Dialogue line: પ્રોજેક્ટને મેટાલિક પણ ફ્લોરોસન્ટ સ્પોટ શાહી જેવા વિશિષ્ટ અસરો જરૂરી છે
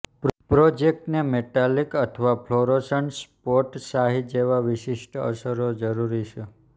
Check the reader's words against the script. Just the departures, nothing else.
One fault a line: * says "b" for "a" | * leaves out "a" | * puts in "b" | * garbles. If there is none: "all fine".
* says "અથવા" for "પણ"